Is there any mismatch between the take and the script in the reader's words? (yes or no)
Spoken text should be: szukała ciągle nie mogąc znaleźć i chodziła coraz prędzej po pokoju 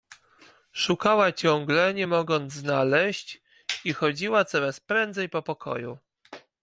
no